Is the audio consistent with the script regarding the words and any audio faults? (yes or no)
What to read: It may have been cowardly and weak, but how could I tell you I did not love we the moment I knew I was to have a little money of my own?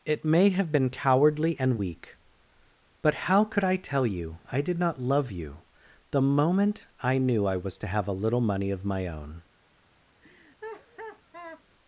no